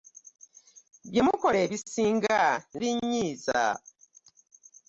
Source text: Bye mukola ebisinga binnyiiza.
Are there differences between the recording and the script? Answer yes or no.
no